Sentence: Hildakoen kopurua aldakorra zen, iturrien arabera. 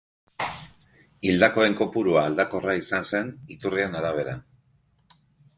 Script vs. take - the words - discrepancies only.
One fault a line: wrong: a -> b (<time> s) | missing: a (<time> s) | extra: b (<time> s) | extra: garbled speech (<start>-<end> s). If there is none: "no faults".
extra: izan (2.8 s)